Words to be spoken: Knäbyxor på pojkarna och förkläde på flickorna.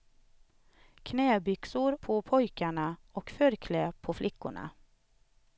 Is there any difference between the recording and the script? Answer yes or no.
no